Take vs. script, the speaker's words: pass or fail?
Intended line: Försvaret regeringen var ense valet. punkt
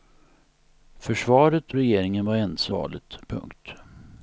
pass